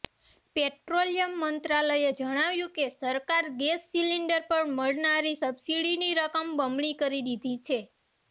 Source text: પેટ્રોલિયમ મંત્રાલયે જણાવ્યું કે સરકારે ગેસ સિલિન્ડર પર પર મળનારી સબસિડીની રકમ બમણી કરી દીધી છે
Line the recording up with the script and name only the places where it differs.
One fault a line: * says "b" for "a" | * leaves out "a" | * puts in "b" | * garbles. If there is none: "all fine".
* leaves out "પર"